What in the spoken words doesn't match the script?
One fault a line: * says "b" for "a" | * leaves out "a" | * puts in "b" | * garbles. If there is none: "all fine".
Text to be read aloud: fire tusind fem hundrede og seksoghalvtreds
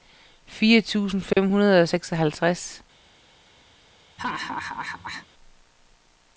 all fine